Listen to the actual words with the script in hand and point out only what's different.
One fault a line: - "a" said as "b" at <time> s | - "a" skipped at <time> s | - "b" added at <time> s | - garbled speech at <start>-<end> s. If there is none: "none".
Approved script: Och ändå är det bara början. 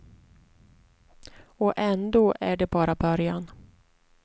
none